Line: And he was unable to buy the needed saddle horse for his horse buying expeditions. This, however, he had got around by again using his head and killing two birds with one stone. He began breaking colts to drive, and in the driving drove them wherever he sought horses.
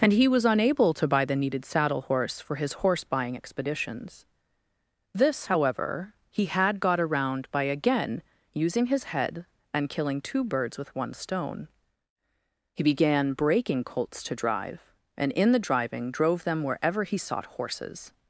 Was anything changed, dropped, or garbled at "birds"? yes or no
no